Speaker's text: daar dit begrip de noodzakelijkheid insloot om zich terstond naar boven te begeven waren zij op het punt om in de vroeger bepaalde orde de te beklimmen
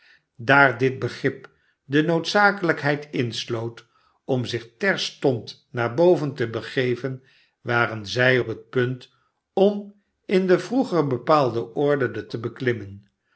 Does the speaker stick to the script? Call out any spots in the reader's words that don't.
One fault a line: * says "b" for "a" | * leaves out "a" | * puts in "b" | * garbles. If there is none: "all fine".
all fine